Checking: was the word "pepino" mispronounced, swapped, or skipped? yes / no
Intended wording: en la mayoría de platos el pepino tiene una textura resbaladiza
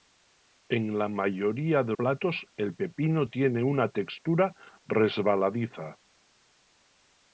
no